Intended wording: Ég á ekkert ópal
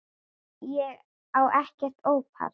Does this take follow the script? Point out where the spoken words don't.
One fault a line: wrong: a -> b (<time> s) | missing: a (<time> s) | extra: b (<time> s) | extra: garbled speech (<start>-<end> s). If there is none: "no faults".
no faults